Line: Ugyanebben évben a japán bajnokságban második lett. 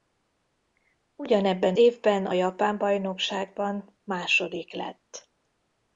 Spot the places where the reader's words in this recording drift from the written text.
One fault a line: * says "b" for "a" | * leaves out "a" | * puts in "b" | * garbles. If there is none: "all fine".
all fine